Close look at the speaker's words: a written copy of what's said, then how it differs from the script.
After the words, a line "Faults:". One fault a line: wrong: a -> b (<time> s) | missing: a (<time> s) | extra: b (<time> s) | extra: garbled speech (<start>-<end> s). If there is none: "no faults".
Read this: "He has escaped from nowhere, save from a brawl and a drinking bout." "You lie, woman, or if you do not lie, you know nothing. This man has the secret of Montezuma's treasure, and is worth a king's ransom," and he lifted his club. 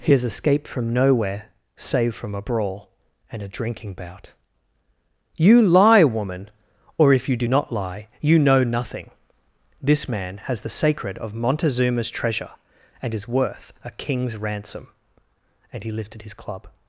"He has escaped from nowhere, save from a brawl and a drinking bout." "You lie, woman, or if you do not lie, you know nothing. This man has the sacred of Montezuma's treasure, and is worth a king's ransom," and he lifted his club.
Faults:
wrong: secret -> sacred (10.7 s)